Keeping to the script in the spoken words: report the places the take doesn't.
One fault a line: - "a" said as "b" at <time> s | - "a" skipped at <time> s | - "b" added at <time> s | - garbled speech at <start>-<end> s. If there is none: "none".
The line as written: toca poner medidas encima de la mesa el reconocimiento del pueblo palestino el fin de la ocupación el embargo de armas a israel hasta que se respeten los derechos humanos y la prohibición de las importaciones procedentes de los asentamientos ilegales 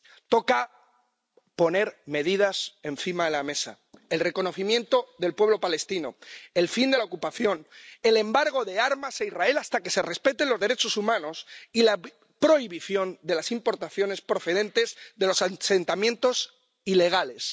none